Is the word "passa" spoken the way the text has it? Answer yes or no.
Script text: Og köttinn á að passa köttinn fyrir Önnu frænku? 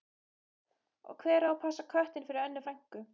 yes